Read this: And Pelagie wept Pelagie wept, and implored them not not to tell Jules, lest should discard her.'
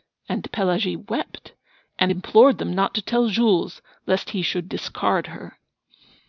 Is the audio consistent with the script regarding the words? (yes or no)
no